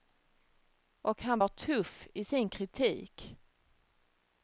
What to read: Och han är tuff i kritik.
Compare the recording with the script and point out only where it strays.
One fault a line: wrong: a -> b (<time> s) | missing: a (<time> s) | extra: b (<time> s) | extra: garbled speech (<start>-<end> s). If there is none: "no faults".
wrong: är -> var (1.4 s)
extra: sin (2.2 s)